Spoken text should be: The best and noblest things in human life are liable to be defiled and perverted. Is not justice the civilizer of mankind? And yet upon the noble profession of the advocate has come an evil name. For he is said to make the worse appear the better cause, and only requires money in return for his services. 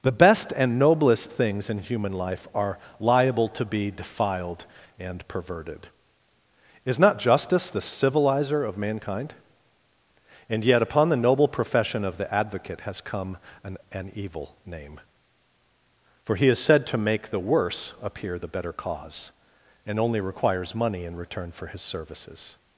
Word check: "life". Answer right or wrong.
right